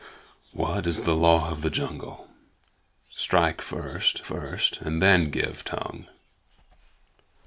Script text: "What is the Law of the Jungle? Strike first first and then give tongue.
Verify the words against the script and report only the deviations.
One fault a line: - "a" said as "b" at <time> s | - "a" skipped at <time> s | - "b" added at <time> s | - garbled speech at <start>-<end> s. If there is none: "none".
none